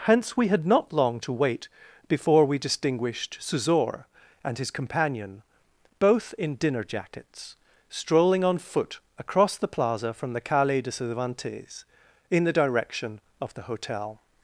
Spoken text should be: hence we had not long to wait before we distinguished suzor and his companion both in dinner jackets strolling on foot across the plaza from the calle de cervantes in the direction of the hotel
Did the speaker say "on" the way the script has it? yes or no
yes